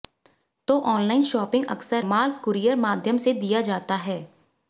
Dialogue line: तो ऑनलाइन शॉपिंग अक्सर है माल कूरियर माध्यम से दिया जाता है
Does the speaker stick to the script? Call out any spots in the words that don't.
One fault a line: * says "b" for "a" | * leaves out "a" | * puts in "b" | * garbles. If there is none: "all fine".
* leaves out "है"